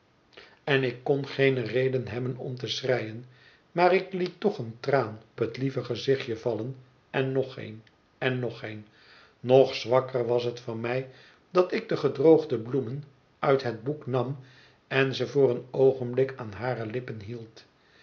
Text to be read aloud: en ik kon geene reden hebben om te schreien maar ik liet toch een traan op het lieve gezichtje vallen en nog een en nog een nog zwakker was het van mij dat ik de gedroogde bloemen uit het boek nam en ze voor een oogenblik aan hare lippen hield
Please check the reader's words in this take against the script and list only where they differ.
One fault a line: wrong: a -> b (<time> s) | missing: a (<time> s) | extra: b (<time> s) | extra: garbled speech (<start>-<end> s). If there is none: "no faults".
missing: op (5.2 s)